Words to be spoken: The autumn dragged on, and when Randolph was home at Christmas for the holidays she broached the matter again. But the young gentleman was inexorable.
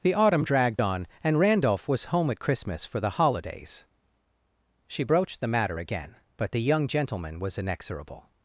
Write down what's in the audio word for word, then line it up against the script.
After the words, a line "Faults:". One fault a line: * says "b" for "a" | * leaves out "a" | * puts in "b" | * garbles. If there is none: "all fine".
The autumn dragged on, and Randolph was home at Christmas for the holidays she broached the matter again. But the young gentleman was inexorable.
Faults:
* leaves out "when"